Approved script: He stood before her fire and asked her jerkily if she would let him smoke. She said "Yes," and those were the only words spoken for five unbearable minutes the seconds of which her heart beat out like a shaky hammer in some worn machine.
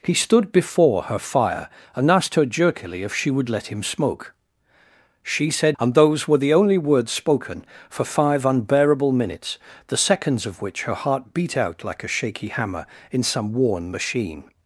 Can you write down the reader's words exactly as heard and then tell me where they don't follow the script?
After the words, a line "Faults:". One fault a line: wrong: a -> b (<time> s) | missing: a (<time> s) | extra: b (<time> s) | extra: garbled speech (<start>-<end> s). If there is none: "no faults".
He stood before her fire and asked her jerkily if she would let him smoke. She said," "And those were the only words spoken for five unbearable minutes the seconds of which her heart beat out like a shaky hammer in some worn machine.
Faults:
missing: Yes (5.8 s)